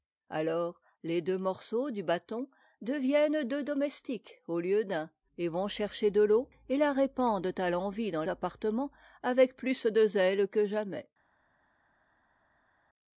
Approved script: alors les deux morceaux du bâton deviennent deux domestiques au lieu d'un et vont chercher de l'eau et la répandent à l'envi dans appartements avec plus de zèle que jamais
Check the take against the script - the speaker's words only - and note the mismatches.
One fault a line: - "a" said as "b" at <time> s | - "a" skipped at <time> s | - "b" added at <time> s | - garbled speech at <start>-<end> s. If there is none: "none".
none